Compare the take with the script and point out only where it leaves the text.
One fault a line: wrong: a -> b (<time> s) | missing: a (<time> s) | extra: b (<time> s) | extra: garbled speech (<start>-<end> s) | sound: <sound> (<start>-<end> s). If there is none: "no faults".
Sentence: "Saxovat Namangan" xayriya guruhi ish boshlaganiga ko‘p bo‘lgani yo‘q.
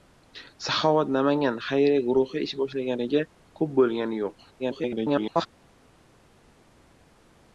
extra: garbled speech (4.6-5.5 s)